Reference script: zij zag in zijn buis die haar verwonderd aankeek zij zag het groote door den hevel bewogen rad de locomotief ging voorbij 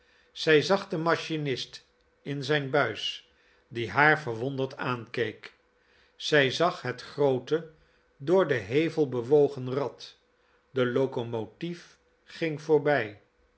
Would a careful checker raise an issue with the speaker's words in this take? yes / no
yes